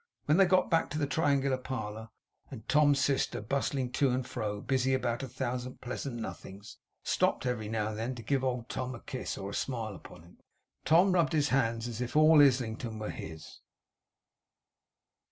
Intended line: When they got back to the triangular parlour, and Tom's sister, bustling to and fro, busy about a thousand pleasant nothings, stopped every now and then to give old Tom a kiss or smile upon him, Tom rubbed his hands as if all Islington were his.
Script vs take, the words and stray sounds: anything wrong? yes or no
no